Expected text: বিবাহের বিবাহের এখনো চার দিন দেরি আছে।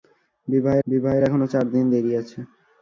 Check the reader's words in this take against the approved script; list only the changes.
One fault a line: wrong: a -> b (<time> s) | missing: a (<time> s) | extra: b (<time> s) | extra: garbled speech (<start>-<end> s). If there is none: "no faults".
no faults